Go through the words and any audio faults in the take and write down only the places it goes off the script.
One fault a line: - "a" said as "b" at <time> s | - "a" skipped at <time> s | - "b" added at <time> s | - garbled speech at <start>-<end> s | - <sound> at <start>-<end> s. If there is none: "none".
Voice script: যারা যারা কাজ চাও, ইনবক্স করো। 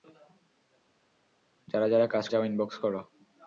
none